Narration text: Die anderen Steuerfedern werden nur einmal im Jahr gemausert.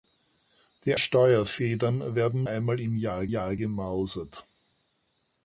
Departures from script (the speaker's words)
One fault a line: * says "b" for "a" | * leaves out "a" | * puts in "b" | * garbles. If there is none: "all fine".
* leaves out "anderen"
* leaves out "nur"
* puts in "Jahr"